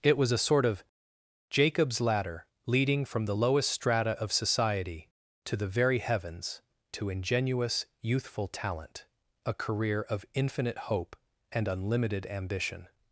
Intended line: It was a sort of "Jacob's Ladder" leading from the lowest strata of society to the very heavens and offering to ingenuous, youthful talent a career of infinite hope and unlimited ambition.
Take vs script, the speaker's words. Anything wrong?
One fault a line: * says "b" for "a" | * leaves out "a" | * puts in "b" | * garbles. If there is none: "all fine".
* leaves out "and offering"